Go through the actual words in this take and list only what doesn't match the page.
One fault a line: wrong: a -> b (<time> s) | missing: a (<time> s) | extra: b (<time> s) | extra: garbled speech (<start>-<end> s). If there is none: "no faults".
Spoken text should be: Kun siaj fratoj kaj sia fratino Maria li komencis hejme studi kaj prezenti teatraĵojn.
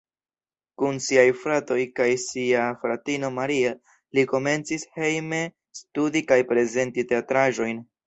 no faults